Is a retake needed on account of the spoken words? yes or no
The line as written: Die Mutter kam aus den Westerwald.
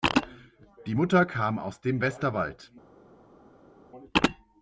yes